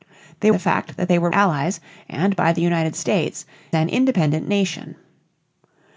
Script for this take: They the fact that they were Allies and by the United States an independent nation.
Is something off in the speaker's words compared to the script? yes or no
no